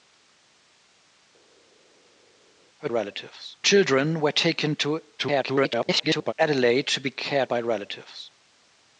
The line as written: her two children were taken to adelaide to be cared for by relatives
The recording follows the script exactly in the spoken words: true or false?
false